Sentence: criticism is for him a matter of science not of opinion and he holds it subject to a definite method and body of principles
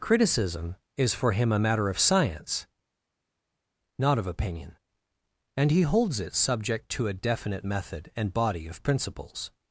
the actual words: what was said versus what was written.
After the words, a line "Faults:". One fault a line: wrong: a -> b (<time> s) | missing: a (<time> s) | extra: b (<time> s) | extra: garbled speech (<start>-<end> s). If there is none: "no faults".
criticism is for him a matter of science not of opinion and he holds it subject to a definite method and body of principles
Faults:
no faults